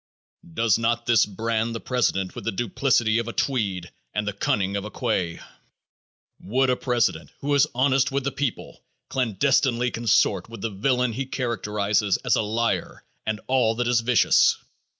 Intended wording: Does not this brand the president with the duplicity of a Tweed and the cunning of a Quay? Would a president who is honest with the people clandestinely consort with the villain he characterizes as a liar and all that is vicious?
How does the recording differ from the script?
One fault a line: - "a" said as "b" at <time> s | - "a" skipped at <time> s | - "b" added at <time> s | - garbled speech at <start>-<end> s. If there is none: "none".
none